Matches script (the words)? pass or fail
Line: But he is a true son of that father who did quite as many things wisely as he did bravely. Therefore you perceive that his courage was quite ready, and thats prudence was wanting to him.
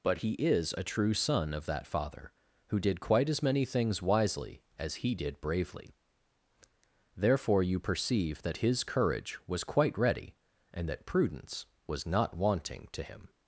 fail